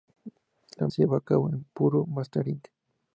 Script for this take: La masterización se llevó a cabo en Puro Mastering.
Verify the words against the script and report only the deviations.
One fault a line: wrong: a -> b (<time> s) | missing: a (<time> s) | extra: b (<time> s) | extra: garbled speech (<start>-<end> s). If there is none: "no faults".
missing: masterización (0.9 s)